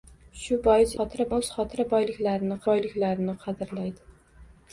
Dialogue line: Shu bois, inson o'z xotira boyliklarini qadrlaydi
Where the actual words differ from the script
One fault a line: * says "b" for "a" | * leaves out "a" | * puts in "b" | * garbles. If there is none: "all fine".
* says "xotira" for "inson"
* puts in "boyliklarini"